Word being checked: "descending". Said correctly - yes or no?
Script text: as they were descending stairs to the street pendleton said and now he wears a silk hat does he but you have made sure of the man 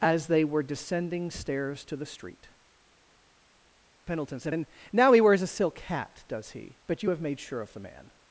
yes